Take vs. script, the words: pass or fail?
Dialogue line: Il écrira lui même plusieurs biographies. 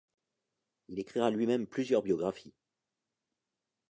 pass